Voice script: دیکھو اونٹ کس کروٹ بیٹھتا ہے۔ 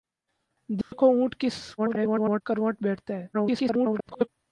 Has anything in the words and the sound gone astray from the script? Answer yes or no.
yes